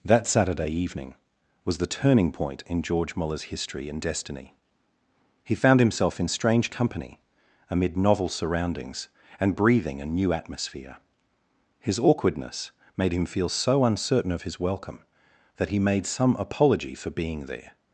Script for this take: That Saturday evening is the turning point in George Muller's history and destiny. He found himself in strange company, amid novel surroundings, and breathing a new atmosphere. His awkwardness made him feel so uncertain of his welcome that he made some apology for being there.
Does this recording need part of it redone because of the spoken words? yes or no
yes